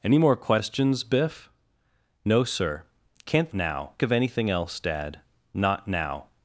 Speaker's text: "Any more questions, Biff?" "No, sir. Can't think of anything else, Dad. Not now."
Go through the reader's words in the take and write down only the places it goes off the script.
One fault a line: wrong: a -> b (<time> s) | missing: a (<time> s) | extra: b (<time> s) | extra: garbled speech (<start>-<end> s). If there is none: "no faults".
wrong: think -> now (3.5 s)